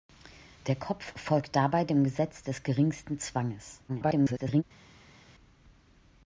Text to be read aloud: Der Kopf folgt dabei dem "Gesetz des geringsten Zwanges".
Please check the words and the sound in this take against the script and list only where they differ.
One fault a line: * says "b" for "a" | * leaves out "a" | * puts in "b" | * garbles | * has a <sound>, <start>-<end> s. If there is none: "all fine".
* garbles